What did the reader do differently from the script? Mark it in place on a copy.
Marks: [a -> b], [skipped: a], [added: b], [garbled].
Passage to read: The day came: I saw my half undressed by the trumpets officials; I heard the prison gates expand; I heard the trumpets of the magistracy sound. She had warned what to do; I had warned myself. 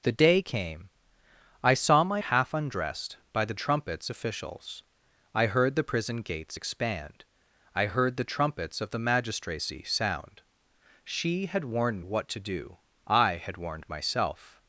The day came: I saw my half undressed by the trumpets officials; I heard the prison gates expand; I heard the trumpets of the magistracy sound. She had warned what to do; I had warned myself.